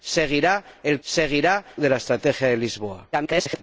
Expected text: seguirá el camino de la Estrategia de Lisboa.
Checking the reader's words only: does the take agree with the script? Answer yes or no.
no